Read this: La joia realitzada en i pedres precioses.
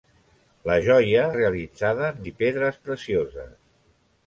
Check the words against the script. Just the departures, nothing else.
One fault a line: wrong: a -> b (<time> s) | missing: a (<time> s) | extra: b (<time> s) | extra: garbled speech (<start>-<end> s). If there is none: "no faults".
no faults